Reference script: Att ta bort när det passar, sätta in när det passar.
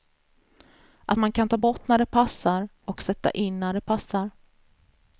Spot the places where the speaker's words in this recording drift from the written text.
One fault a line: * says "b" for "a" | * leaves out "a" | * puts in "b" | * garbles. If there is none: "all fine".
* puts in "man kan"
* puts in "och"